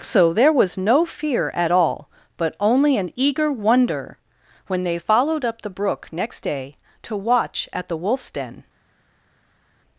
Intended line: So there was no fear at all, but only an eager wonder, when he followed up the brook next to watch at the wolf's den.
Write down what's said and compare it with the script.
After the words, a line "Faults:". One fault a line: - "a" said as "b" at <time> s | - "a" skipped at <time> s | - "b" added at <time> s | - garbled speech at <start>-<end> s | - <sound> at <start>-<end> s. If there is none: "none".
So there was no fear at all, but only an eager wonder, when they followed up the brook next day to watch at the wolf's den.
Faults:
- "he" said as "they" at 4.8 s
- "day" added at 6.4 s